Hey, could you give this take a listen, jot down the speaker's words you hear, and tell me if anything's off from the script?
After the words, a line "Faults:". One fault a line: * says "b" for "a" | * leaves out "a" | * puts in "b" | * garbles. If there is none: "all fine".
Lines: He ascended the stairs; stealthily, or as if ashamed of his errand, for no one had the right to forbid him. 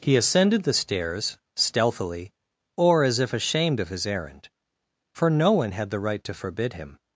He ascended the stairs; stealthily, or as if ashamed of his errand, for no one had the right to forbid him.
Faults:
all fine